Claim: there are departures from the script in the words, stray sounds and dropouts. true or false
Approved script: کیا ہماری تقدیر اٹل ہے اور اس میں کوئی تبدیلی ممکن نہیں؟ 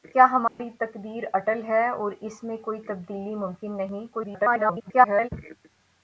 true